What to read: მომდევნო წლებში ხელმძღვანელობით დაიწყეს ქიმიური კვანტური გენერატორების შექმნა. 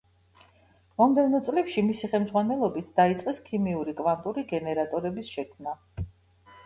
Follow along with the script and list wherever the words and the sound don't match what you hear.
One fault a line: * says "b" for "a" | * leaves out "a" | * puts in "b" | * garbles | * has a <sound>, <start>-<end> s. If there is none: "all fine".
* puts in "მისი"